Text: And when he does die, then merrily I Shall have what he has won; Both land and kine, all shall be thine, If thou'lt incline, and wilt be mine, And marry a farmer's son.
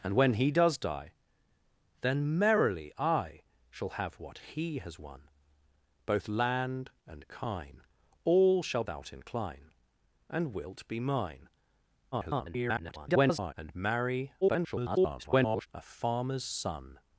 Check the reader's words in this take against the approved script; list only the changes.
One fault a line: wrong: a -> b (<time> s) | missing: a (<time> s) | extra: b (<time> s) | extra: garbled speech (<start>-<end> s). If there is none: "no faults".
missing: be thine If (8.8 s)
extra: garbled speech (12.1-13.5 s)
extra: garbled speech (14.4-15.7 s)